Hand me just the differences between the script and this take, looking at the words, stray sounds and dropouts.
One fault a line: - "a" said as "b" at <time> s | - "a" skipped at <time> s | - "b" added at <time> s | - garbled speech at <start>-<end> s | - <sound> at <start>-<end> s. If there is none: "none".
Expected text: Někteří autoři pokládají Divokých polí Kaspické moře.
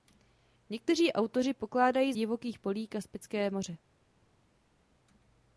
none